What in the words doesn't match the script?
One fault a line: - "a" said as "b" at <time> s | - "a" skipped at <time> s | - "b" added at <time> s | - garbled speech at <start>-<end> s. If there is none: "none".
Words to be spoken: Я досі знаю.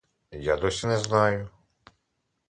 - "не" added at 0.8 s